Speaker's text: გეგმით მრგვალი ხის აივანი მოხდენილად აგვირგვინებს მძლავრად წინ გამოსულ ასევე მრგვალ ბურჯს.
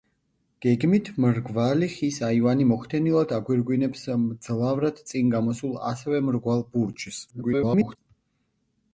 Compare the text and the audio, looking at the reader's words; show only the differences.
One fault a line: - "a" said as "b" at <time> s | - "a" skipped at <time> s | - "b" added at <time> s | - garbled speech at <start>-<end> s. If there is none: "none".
- garbled speech at 7.3-8.0 s